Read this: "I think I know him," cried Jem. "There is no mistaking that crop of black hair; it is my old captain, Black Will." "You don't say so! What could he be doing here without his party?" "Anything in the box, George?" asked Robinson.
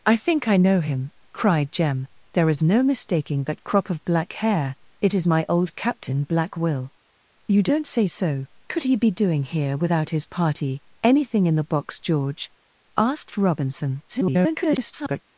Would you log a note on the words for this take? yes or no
yes